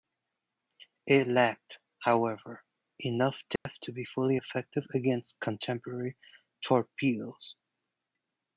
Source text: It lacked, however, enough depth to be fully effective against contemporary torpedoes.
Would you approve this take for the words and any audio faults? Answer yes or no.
no